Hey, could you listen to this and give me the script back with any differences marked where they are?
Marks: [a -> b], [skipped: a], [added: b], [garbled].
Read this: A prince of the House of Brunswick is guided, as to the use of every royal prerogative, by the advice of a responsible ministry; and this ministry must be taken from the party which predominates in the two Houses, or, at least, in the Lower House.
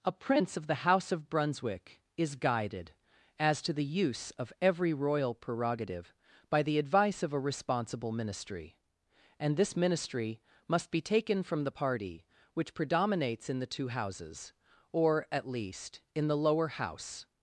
A prince of the House of Brunswick is guided, as to the use of every royal prerogative, by the advice of a responsible ministry; and this ministry must be taken from the party which predominates in the two Houses, or, at least, in the Lower House.